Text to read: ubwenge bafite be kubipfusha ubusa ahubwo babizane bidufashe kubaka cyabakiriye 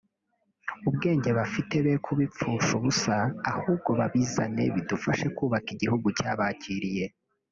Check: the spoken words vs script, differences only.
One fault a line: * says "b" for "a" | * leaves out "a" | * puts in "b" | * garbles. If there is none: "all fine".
* puts in "igihugu"